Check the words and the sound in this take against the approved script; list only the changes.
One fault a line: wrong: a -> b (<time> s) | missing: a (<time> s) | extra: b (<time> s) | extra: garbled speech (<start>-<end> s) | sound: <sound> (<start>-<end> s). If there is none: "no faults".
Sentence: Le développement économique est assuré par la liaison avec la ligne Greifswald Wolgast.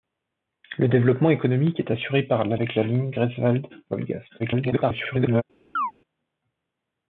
missing: liaison (2.6 s)
extra: garbled speech (4.4-5.4 s)
sound: chirp (5.8-5.9 s)